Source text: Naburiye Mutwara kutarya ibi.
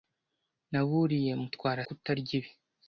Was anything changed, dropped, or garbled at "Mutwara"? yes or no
no